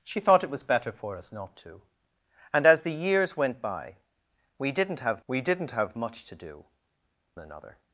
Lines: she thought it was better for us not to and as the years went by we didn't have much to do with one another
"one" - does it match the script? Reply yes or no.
no